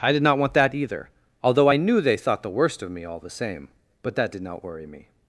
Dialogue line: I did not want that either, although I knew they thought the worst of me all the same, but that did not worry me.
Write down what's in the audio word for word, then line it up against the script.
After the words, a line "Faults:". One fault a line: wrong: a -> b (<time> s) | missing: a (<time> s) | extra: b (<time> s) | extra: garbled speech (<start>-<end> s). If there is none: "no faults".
I did not want that either, although I knew they thought the worst of me all the same, but that did not worry me.
Faults:
no faults